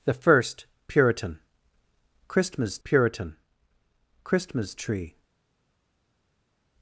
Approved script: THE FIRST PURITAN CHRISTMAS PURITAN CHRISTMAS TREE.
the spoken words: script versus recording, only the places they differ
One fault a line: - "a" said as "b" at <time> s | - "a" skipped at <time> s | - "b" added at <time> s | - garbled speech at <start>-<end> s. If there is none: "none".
none